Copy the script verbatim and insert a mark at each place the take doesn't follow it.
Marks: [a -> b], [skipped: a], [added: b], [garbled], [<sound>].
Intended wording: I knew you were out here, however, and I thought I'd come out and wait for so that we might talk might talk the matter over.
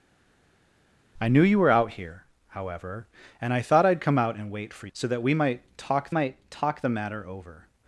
I knew you were out here, however, and I thought I'd come out and wait for so that we might talk might talk the matter over.